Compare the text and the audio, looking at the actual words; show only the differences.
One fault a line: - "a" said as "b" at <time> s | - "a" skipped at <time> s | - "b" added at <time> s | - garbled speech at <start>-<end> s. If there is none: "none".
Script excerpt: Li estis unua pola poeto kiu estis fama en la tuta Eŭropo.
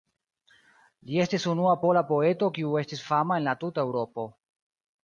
none